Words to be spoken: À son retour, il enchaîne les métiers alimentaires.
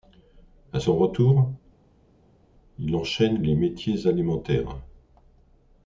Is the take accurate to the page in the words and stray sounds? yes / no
yes